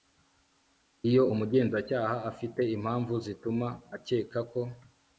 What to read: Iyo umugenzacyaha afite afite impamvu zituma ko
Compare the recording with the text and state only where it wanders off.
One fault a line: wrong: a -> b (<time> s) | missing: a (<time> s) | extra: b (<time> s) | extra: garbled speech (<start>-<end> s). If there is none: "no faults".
missing: afite (2.6 s)
extra: akeka (4.0 s)